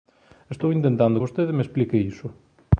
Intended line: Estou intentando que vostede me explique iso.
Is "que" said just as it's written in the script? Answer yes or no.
no